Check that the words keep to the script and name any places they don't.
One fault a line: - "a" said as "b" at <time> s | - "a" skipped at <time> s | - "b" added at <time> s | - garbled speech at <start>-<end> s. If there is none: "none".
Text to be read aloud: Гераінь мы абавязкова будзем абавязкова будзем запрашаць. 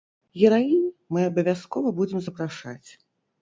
- "абавязкова будзем" skipped at 2.2 s